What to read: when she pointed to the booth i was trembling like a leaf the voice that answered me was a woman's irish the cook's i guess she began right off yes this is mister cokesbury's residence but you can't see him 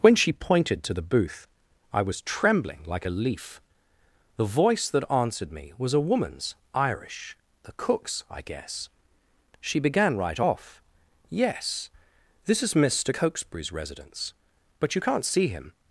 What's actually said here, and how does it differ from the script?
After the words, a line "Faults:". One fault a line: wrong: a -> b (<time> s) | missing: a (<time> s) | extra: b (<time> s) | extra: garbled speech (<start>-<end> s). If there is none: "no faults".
when she pointed to the booth i was trembling like a leaf the voice that answered me was a woman's irish the cook's i guess she began right off yes this is mister cokesbury's residence but you can't see him
Faults:
no faults